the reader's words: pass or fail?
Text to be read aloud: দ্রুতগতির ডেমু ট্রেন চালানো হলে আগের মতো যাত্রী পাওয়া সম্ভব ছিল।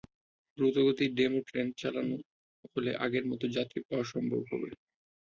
fail